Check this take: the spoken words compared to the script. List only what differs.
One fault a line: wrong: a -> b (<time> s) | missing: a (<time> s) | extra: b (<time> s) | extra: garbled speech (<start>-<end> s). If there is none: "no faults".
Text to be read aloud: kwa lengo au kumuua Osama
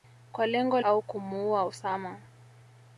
no faults